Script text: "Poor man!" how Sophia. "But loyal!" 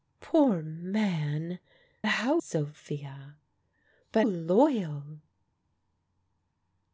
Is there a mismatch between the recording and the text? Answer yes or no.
no